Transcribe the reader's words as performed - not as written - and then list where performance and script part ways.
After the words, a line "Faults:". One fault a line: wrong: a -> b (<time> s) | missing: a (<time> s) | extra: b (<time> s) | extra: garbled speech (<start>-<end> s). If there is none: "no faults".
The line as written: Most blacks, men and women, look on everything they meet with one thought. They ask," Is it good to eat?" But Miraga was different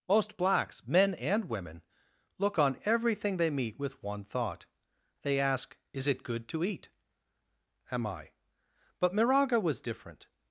Most blacks, men and women, look on everything they meet with one thought. They ask," Is it good to eat?" am I But Miraga was different
Faults:
extra: am I (7.9 s)